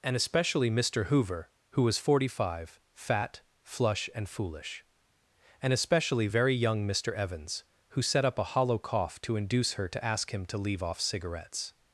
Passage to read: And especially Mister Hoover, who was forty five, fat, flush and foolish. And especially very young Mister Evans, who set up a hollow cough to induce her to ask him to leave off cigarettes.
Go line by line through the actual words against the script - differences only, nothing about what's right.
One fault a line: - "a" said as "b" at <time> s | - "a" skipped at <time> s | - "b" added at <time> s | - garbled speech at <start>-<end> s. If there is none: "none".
none